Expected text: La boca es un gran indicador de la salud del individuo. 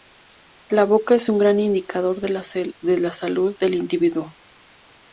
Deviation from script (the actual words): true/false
false